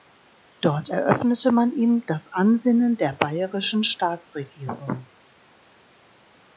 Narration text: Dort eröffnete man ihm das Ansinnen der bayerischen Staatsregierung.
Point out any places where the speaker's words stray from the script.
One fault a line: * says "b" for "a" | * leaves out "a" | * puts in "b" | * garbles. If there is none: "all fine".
all fine